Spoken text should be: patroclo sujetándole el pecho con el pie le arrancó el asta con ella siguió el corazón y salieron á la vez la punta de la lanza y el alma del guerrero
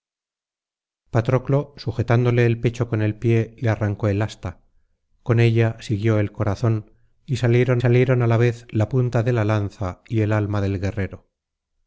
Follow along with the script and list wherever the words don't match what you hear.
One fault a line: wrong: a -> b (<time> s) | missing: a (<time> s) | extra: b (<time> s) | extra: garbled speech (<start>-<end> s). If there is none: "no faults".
extra: salieron (7.8 s)